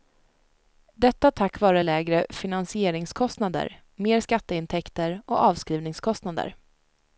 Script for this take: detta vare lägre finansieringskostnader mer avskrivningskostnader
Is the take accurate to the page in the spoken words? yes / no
no